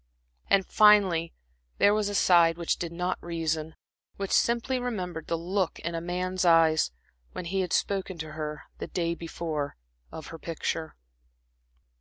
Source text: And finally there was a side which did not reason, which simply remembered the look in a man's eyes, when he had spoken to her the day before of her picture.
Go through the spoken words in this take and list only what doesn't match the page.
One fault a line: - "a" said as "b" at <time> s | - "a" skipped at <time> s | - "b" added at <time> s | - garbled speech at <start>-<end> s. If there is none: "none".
none